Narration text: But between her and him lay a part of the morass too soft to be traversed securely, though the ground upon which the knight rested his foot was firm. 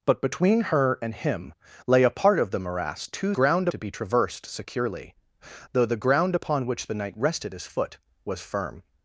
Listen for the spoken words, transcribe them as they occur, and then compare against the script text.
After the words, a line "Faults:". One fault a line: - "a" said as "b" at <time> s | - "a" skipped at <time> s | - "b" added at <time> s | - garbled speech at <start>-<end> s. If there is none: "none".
But between her and him lay a part of the morass too ground to be traversed securely, though the ground upon which the knight rested his foot was firm.
Faults:
- "soft" said as "ground" at 3.3 s